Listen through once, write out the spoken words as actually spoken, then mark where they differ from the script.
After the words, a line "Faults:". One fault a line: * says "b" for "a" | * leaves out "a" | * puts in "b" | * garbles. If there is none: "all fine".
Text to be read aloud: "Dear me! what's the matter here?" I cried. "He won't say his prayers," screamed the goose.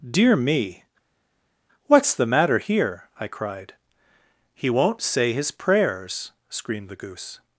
"Dear me! what's the matter here?" I cried. "He won't say his prayers," screamed the goose.
Faults:
all fine